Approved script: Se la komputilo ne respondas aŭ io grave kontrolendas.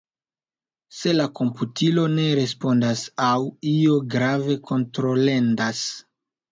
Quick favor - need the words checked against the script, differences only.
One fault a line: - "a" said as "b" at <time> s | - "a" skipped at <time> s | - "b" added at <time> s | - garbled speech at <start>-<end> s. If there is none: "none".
none